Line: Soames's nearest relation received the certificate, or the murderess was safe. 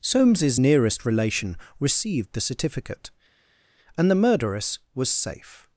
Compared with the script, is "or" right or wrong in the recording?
wrong